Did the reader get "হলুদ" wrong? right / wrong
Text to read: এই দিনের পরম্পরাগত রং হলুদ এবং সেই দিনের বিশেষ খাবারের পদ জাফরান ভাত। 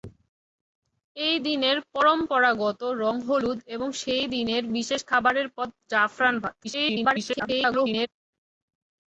right